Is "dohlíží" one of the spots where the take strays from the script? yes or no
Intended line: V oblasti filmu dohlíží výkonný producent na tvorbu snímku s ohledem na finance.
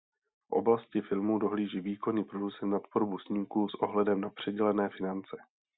no